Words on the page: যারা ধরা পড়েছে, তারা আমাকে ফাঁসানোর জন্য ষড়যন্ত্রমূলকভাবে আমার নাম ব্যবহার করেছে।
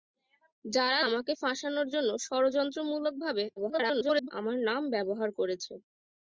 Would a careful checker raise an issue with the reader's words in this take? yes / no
yes